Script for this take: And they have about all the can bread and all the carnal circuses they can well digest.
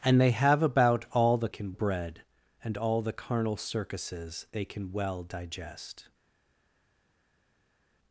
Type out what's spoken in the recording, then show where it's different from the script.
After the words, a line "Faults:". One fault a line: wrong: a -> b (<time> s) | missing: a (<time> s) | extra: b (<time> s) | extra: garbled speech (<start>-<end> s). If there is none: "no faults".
And they have about all the can bread and all the carnal circuses they can well digest.
Faults:
no faults